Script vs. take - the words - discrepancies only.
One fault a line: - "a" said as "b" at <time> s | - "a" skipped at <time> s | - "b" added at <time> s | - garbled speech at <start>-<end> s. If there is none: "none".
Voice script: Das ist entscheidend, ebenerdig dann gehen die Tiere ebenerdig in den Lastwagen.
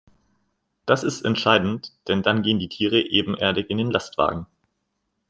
- "ebenerdig" said as "denn" at 2.1 s